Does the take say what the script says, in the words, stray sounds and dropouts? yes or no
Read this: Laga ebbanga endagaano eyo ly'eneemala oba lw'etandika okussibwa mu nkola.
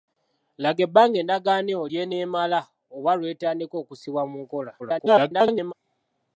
no